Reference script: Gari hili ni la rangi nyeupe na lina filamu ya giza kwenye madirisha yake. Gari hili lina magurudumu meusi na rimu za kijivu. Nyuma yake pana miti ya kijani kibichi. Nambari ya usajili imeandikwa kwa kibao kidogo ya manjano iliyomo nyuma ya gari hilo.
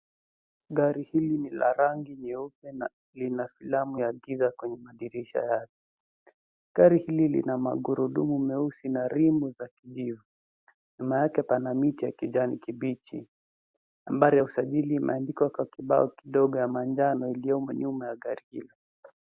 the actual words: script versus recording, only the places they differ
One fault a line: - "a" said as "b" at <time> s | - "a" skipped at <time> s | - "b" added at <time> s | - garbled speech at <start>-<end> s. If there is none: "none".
none